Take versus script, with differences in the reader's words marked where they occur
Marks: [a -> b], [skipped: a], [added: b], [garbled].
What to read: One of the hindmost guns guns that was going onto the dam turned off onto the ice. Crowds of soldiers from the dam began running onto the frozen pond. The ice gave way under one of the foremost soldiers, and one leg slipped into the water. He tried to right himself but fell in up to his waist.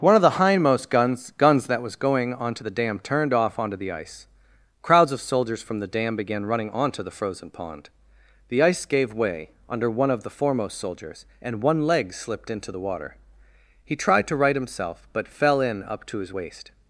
One of the hindmost guns guns that was going onto the dam turned off onto the ice. Crowds of soldiers from the dam began running onto the frozen pond. The ice gave way under one of the foremost soldiers, and one leg slipped into the water. He tried to right himself but fell in up to his waist.